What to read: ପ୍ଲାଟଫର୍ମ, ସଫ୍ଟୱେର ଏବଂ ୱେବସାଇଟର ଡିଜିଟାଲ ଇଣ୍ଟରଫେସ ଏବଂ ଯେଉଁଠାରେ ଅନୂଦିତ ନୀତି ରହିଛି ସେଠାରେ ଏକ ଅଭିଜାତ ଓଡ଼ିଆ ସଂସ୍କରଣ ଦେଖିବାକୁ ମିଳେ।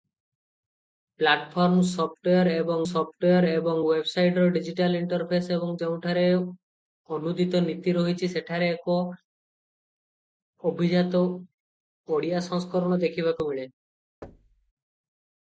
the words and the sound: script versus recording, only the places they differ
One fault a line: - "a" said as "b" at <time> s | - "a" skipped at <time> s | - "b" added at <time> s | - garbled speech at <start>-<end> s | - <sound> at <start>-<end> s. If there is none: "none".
- "ସଫ୍ଟୱେର ଏବଂ" added at 2.9 s
- thud at 14.2-14.7 s